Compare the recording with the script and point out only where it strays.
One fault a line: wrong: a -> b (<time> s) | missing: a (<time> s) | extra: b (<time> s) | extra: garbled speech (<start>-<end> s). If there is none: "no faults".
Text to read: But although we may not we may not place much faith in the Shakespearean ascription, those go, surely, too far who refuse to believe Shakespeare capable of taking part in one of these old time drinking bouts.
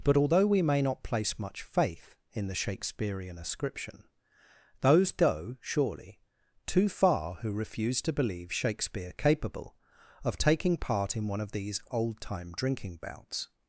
missing: we may not (1.0 s)